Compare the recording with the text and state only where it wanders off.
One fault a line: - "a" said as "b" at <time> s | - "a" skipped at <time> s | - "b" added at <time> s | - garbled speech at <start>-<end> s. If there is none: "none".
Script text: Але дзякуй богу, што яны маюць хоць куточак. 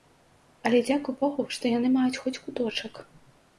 none